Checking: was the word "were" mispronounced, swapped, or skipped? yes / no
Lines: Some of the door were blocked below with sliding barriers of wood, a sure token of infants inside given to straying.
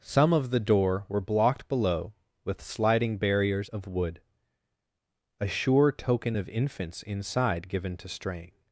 no